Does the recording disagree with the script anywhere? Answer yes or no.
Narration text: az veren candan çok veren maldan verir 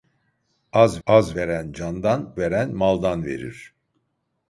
yes